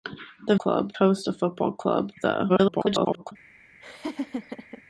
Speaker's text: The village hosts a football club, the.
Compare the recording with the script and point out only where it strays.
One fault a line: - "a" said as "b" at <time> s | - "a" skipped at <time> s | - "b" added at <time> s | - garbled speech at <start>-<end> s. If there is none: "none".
- "village" said as "club" at 0.5 s
- garbled speech at 2.5-3.3 s